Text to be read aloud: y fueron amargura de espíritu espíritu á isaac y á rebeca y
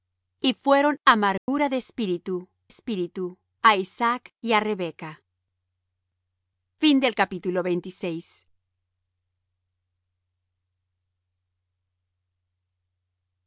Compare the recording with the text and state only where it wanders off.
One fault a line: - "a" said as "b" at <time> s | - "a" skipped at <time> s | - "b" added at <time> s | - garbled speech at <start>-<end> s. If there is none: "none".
none